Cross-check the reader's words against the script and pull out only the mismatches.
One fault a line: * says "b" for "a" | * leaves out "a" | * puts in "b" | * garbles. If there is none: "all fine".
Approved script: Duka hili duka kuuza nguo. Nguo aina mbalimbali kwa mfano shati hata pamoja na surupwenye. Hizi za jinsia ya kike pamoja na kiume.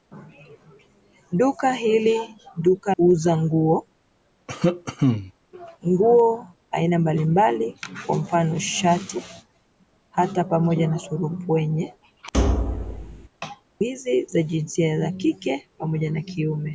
all fine